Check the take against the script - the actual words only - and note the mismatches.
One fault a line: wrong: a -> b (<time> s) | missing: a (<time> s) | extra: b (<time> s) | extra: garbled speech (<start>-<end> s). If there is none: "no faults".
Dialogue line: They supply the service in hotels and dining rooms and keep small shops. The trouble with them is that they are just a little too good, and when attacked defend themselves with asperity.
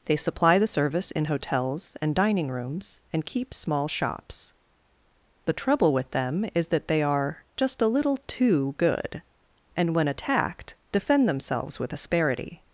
no faults